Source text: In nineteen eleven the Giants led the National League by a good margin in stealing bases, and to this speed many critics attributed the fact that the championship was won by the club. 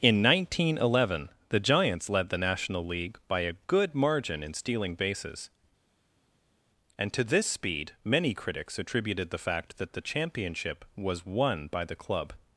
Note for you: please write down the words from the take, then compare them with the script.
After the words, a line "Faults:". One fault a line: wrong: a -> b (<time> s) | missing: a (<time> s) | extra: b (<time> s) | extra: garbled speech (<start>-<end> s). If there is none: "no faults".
In nineteen eleven the Giants led the National League by a good margin in stealing bases, and to this speed many critics attributed the fact that the championship was won by the club.
Faults:
no faults